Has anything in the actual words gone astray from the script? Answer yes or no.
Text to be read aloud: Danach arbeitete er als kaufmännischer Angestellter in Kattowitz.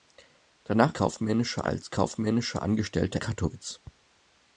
yes